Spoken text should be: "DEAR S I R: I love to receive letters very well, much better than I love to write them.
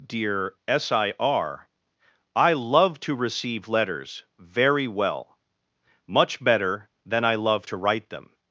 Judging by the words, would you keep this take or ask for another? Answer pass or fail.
pass